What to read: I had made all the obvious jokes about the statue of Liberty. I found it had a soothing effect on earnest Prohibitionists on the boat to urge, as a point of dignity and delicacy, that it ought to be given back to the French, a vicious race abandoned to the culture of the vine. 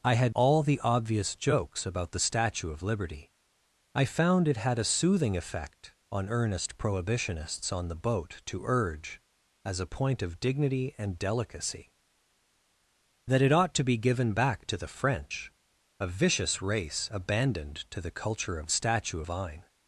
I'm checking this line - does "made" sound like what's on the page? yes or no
no